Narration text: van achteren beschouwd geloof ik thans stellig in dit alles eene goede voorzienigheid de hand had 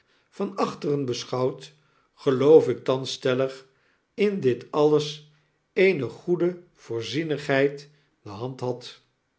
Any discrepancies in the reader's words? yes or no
no